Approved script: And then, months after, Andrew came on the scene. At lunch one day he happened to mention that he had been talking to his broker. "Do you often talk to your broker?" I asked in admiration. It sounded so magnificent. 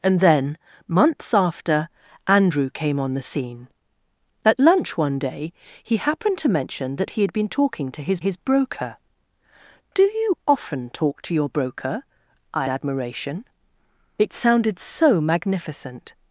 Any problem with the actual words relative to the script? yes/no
yes